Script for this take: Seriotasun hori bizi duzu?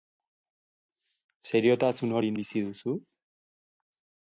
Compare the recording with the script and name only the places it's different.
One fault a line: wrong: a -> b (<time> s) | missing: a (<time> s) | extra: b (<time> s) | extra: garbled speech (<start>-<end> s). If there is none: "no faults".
no faults